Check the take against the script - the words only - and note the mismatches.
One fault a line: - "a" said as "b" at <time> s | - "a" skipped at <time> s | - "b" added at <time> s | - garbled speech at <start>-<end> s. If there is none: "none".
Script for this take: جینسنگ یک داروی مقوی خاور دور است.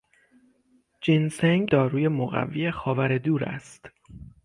- "یک" skipped at 1.7 s